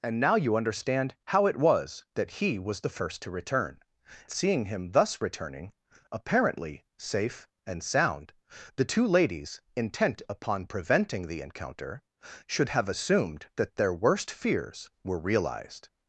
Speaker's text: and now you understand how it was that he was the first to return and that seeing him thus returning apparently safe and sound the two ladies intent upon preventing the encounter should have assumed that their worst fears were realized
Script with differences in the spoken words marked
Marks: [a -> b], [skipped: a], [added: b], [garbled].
and now you understand how it was that he was the first to return [skipped: and that] seeing him thus returning apparently safe and sound the two ladies intent upon preventing the encounter should have assumed that their worst fears were realized